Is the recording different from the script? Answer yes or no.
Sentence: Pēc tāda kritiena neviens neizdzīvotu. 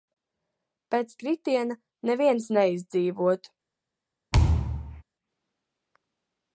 yes